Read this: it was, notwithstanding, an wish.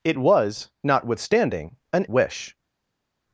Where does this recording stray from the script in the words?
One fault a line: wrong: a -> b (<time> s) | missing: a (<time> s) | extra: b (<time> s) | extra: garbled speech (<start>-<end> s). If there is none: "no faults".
no faults